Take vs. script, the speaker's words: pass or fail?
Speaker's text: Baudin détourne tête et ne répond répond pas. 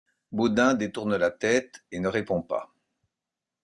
fail